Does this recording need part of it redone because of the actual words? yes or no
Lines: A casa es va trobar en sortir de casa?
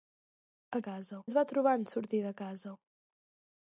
no